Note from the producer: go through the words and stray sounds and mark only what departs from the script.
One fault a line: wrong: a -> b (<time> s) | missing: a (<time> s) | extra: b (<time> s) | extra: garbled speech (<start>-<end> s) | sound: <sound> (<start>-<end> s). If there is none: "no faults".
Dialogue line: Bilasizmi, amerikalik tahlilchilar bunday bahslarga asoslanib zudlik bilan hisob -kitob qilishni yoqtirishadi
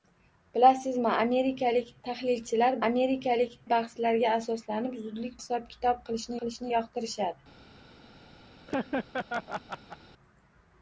wrong: bunday -> amerikalik (2.9 s)
missing: bilan (5.4 s)
extra: qilishni (6.4 s)
sound: laugh (8.7-10.0 s)